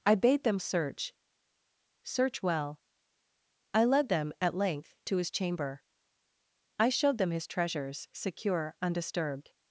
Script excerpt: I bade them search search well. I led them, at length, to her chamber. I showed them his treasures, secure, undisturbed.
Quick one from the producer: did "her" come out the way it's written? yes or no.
no